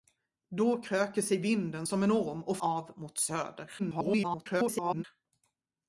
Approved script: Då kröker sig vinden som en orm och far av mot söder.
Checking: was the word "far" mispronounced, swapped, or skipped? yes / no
yes